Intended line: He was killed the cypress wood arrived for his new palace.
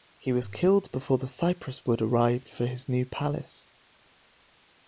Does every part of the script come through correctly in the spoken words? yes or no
no